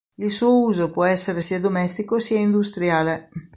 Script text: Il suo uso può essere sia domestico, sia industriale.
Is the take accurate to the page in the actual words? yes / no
yes